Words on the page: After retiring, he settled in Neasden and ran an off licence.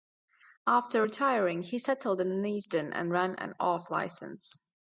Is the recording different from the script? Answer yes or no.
no